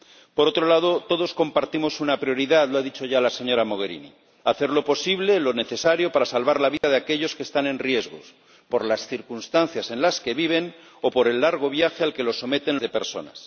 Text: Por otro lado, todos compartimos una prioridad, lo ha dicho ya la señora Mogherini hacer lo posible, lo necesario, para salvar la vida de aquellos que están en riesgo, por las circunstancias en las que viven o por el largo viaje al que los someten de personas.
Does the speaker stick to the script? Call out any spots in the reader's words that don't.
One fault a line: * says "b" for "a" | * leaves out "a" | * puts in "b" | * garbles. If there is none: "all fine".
all fine